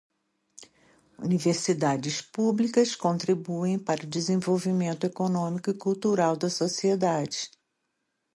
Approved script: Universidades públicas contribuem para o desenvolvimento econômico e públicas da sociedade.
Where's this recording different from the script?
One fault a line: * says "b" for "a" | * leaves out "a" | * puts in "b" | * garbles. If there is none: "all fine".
* says "cultural" for "públicas"